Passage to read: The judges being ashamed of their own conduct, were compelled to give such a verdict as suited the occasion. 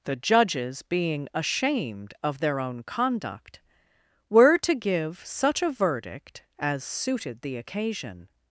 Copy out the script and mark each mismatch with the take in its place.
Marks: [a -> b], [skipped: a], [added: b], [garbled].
The judges being ashamed of their own conduct, were [skipped: compelled] to give such a verdict as suited the occasion.